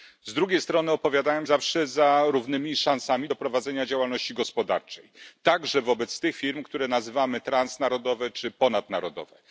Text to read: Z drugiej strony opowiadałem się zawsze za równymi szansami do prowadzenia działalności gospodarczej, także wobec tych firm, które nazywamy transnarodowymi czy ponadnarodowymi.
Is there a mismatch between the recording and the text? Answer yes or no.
yes